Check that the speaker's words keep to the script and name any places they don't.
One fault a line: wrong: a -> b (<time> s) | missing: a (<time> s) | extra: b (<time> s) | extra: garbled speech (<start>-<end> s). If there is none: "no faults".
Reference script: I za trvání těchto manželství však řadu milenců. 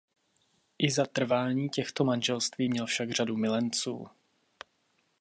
extra: měl (2.7 s)